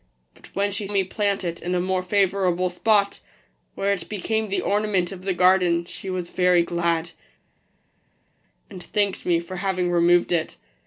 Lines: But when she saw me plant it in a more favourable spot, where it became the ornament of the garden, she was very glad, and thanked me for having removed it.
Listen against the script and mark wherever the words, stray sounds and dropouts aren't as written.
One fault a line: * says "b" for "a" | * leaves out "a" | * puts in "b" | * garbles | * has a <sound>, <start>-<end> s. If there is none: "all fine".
* leaves out "saw"